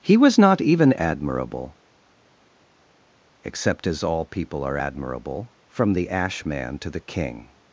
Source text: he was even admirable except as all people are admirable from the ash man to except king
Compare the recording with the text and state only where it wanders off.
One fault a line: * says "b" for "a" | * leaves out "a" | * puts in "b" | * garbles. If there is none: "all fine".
* puts in "not"
* says "the" for "except"